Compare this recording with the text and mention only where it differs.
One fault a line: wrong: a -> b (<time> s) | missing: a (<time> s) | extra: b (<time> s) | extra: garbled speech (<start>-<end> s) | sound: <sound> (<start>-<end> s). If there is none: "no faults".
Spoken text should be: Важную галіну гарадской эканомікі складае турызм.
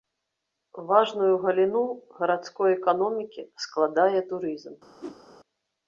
sound: whoosh (5.0-5.2 s)